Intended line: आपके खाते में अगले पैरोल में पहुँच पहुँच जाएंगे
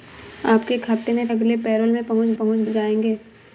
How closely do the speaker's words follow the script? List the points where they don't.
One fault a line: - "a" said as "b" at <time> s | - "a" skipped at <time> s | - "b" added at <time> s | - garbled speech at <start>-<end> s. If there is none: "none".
none